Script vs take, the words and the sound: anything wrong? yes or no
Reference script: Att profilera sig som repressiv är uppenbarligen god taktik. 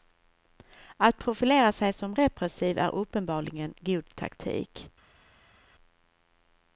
no